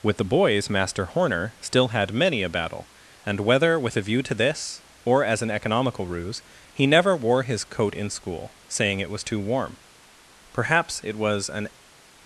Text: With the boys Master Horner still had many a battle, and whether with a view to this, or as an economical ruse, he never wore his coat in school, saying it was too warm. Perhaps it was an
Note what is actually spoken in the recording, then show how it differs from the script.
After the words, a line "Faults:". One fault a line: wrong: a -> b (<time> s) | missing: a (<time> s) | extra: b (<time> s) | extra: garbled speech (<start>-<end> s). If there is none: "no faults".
With the boys Master Horner still had many a battle, and whether with a view to this, or as an economical ruse, he never wore his coat in school, saying it was too warm. Perhaps it was an
Faults:
no faults